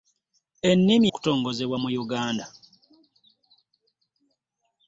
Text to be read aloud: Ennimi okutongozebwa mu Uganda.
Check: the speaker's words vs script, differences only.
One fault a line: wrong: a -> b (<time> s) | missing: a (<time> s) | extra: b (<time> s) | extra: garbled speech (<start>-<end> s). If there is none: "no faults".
no faults